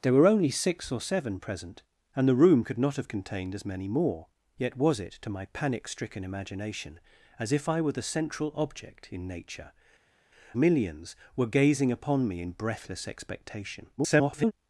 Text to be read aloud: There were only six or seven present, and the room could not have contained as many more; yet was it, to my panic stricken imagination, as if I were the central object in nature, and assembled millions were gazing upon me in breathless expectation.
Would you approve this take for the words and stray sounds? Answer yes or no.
no